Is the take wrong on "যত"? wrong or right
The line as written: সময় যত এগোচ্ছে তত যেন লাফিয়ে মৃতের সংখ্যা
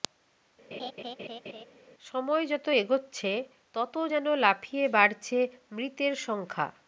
right